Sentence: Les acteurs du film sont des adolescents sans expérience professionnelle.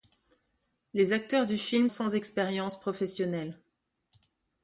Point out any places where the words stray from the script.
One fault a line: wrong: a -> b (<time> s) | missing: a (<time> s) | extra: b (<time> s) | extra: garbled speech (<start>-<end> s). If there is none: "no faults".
missing: sont des adolescents (1.9 s)